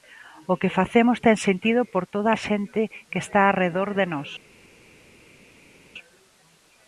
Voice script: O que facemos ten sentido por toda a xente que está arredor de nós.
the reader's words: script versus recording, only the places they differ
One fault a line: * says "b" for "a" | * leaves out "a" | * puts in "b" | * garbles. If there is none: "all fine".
all fine